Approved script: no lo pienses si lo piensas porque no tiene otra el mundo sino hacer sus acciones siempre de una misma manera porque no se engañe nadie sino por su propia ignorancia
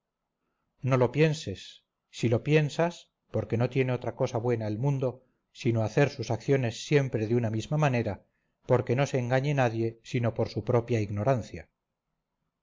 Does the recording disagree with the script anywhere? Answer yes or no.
yes